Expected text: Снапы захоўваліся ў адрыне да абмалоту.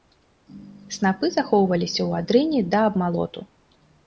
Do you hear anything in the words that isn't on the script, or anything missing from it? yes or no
no